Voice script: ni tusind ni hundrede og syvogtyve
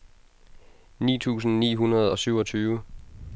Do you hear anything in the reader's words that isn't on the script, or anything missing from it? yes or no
no